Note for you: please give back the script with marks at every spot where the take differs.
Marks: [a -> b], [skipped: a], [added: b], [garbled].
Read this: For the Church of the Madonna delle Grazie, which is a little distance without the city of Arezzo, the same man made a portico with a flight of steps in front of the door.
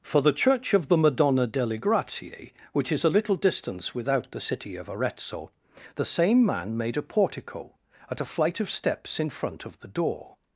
For the Church of the Madonna delle Grazie, which is a little distance without the city of Arezzo, the same man made a portico [with -> at] a flight of steps in front of the door.